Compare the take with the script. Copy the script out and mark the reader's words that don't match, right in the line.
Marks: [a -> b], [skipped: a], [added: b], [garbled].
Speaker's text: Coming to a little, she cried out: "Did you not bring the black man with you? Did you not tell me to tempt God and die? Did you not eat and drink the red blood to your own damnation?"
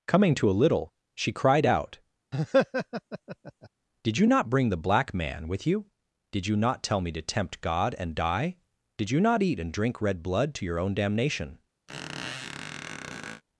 Coming to a little, she cried out: "Did you not bring the black man with you? Did you not tell me to tempt God and die? Did you not eat and drink [skipped: the] red blood to your own damnation?"